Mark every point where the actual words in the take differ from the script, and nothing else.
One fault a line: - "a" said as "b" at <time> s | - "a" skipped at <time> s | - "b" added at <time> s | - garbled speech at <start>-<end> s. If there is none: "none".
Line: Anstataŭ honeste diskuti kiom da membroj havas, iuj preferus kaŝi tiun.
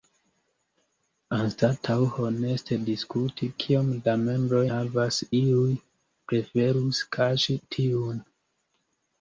none